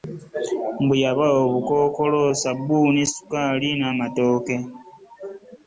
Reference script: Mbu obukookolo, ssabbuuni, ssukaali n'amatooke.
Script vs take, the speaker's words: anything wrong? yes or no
yes